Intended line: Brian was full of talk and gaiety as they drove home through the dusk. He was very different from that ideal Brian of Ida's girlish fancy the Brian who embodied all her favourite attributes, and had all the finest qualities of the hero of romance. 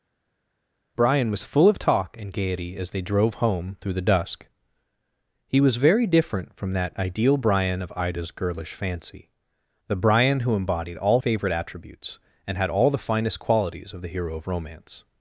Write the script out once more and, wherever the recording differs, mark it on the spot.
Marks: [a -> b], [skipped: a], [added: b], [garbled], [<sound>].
Brian was full of talk and gaiety as they drove home through the dusk. He was very different from that ideal Brian of Ida's girlish fancy the Brian who embodied all [skipped: her] favourite attributes, and had all the finest qualities of the hero of romance.